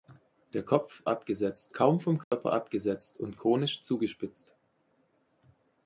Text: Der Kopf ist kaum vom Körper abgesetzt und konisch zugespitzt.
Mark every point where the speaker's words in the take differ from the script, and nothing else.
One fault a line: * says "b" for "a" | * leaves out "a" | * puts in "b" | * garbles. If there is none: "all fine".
* says "abgesetzt" for "ist"